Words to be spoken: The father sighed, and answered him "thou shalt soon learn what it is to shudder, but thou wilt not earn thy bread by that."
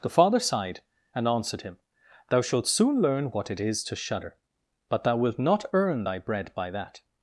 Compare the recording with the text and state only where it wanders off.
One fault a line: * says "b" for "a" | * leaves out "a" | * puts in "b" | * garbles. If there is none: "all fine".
all fine